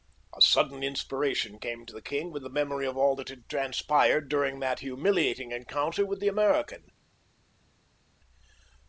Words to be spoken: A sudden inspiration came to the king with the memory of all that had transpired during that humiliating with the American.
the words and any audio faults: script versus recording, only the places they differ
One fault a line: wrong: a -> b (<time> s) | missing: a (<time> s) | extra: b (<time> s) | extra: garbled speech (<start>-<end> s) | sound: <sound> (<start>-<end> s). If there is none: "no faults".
extra: encounter (5.5 s)